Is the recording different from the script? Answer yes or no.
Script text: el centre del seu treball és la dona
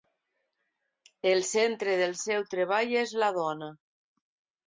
no